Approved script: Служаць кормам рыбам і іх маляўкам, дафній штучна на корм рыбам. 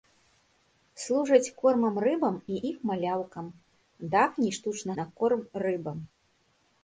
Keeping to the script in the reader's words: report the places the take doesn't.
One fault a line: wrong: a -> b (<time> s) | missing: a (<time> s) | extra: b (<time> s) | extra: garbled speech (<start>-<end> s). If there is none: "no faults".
no faults